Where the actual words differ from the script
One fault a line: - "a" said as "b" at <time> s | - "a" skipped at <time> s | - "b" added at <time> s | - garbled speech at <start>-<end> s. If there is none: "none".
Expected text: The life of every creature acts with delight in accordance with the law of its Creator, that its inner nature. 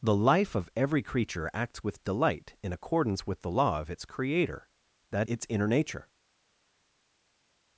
none